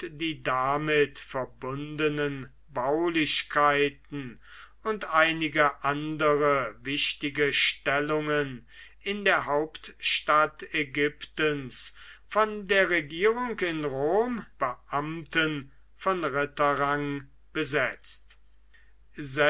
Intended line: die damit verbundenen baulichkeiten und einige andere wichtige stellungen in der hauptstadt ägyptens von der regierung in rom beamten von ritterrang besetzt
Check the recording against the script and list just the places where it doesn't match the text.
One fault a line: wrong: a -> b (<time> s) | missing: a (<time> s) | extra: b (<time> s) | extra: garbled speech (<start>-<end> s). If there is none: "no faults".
no faults